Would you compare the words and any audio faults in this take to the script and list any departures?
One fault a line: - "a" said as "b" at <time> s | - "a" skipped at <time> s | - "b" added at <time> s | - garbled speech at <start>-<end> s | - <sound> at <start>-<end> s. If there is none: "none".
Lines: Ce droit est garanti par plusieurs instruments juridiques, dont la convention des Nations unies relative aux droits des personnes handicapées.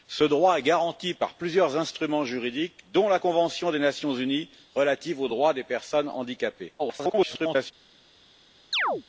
- garbled speech at 6.8-7.7 s
- chirp at 8.7-9.0 s